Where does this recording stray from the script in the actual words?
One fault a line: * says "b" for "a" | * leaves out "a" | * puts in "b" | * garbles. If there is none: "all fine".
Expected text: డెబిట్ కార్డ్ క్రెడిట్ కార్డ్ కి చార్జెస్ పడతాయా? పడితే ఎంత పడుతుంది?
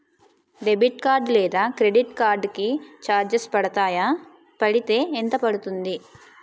* puts in "లేదా"